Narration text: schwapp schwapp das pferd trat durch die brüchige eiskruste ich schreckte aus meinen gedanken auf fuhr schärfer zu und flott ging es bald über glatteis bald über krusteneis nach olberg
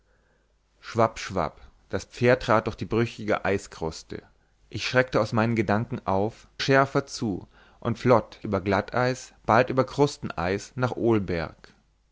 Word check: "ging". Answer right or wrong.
wrong